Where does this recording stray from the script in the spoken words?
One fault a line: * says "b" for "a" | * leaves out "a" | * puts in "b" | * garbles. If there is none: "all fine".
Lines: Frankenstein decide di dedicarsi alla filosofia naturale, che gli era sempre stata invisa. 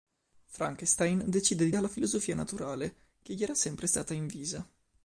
* leaves out "dedicarsi"